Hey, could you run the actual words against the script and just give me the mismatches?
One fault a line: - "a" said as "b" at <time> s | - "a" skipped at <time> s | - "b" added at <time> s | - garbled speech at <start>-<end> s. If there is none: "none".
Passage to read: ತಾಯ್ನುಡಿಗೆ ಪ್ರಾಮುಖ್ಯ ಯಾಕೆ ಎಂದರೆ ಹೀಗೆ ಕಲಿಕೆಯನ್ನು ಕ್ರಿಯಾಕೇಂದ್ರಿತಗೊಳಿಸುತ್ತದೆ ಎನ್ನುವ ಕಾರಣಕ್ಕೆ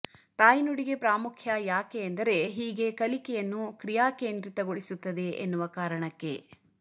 none